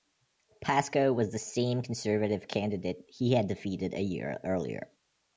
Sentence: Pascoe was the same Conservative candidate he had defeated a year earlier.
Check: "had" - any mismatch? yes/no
no